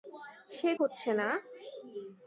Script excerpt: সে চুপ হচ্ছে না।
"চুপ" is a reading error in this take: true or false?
true